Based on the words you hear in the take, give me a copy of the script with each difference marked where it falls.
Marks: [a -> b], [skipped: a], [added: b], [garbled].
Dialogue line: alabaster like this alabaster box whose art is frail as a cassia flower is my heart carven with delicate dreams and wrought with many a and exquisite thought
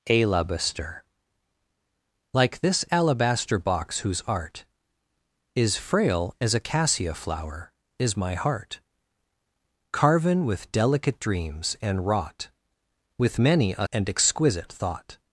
alabaster like this alabaster box whose art is frail as a cassia flower is my heart carven with delicate dreams and wrought with many a and exquisite thought